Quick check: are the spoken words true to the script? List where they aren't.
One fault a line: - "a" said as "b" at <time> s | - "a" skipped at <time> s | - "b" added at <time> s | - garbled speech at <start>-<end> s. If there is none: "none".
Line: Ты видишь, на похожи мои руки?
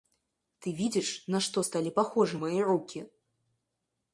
- "что стали" added at 1.4 s